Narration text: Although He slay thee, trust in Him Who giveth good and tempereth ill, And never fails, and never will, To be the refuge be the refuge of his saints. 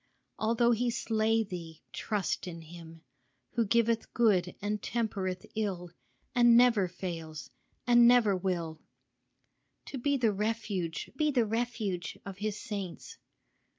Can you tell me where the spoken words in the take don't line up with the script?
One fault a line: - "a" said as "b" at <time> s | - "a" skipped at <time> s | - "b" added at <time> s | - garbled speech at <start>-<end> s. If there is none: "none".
none